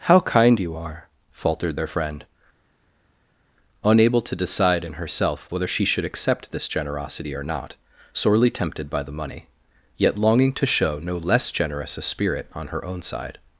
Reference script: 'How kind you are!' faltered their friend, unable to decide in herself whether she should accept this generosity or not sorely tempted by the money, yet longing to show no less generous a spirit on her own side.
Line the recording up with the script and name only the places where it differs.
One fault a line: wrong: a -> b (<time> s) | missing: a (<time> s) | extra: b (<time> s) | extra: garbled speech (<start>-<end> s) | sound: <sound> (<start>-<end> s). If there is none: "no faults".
no faults